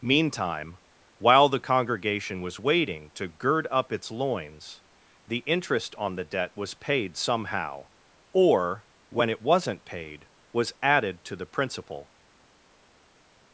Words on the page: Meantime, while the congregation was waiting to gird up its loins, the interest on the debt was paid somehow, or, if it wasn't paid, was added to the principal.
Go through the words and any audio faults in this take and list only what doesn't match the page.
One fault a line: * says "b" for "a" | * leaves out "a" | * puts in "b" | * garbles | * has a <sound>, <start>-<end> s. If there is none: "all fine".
* says "when" for "if"